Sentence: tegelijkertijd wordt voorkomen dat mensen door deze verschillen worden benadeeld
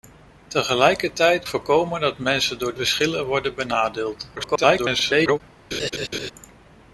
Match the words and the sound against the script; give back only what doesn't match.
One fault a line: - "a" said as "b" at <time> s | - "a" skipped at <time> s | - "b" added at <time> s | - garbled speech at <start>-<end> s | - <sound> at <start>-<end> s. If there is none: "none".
- "wordt" skipped at 1.4 s
- "deze" skipped at 2.7 s
- garbled speech at 4.4-5.4 s
- laugh at 5.7-6.3 s